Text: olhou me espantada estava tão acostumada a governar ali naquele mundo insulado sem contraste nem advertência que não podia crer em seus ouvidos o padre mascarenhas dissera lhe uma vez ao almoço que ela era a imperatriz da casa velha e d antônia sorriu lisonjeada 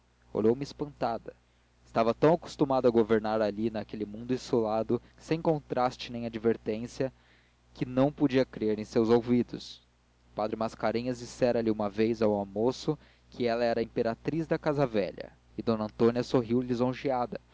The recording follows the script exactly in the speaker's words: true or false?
true